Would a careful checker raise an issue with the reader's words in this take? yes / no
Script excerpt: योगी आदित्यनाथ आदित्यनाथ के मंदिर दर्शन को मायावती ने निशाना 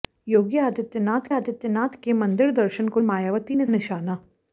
no